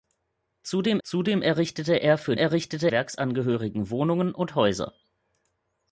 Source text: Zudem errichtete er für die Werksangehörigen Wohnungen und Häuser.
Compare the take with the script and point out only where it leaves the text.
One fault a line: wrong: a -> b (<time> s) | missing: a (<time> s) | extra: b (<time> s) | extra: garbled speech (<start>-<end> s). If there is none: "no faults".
extra: zudem (1.0 s)
wrong: die -> errichtete (2.3 s)